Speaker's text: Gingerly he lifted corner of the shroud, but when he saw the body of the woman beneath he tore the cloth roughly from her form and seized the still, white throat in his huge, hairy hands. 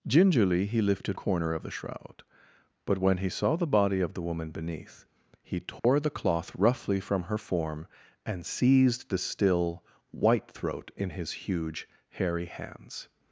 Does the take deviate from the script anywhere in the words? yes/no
no